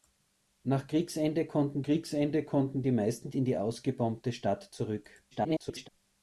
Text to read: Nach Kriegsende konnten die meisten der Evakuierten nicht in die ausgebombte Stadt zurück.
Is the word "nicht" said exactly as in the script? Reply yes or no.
no